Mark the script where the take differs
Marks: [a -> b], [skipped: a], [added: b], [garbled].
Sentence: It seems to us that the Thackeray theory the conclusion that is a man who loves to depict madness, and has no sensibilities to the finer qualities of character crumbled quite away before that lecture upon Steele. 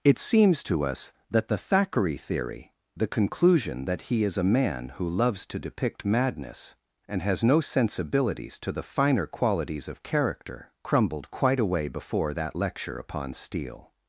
It seems to us that the Thackeray theory the conclusion that [added: he] is a man who loves to depict madness, and has no sensibilities to the finer qualities of character crumbled quite away before that lecture upon Steele.